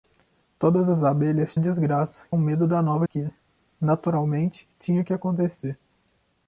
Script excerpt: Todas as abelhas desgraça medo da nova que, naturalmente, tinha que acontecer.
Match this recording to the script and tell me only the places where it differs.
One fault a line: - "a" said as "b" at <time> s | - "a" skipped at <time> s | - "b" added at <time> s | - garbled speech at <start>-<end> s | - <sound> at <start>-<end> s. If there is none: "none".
none